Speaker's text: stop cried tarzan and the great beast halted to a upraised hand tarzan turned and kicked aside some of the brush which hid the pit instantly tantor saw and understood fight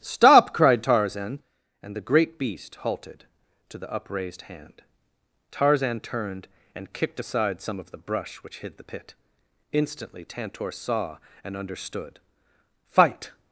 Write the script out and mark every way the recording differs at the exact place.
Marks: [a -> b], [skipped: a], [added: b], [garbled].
stop cried tarzan and the great beast halted to [a -> the] upraised hand tarzan turned and kicked aside some of the brush which hid the pit instantly tantor saw and understood fight